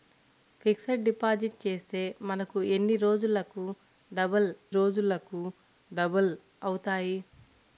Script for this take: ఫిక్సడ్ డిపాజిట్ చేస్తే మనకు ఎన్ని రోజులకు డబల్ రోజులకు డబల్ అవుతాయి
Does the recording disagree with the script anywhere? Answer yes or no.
no